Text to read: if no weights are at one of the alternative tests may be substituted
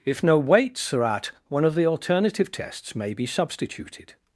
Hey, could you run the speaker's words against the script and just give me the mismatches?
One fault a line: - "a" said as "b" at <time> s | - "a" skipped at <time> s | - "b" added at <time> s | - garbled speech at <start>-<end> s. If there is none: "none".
none